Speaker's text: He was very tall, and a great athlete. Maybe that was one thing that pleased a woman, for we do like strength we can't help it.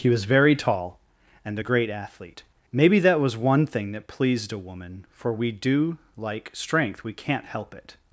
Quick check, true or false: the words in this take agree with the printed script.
true